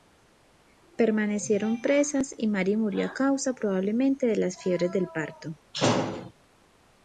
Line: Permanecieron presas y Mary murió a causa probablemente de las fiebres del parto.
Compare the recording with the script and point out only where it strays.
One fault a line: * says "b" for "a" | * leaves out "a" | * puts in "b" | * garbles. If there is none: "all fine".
all fine